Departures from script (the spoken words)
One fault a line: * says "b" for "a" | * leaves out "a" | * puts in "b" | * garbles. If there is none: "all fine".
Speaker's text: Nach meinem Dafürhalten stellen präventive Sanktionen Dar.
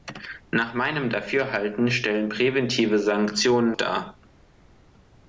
all fine